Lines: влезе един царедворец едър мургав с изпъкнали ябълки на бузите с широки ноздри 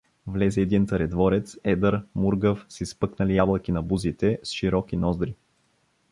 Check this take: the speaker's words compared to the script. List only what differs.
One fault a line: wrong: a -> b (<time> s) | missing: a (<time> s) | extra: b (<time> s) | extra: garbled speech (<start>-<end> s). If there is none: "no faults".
no faults